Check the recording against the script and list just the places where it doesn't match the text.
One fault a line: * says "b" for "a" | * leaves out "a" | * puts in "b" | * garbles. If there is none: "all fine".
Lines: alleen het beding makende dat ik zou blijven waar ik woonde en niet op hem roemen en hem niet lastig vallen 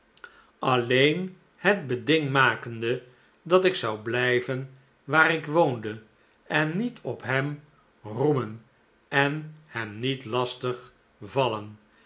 all fine